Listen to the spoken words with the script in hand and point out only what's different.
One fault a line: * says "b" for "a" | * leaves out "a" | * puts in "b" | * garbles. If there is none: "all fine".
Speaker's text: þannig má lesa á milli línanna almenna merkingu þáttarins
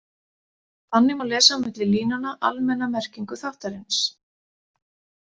all fine